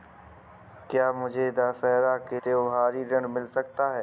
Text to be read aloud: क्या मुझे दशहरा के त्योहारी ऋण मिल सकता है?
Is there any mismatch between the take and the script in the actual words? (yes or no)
no